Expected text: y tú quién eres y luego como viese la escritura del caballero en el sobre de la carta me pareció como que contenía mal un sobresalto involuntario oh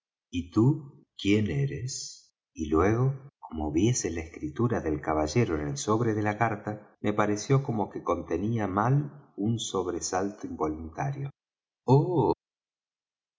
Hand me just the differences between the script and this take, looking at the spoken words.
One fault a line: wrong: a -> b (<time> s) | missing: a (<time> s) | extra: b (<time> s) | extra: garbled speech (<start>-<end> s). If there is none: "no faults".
no faults